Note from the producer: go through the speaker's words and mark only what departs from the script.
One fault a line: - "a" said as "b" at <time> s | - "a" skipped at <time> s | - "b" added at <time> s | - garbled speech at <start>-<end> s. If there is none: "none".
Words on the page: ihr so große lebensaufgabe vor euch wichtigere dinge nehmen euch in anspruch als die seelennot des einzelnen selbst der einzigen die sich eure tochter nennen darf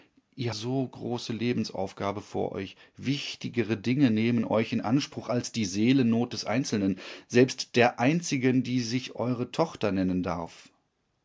none